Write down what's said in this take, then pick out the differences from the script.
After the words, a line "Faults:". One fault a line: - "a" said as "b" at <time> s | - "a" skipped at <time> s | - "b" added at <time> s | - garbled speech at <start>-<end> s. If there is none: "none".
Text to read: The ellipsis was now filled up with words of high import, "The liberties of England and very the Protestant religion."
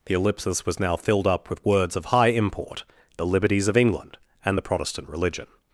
The ellipsis was now filled up with words of high import, "The liberties of England and the Protestant religion."
Faults:
- "very" skipped at 4.6 s